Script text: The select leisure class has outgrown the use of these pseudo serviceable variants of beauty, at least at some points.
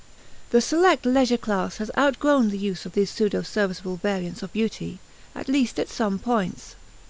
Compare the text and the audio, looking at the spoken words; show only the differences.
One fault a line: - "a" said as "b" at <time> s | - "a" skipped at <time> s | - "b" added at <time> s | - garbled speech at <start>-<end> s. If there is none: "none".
none